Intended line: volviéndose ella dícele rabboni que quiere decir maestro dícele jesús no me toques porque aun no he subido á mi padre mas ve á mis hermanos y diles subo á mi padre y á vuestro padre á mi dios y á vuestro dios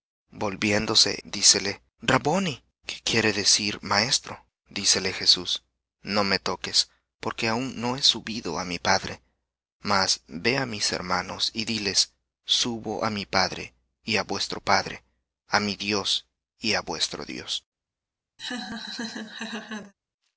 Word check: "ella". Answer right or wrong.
wrong